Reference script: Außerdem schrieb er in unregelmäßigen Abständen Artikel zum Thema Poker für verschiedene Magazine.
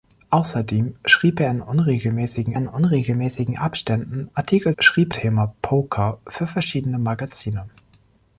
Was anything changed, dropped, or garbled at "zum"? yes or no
yes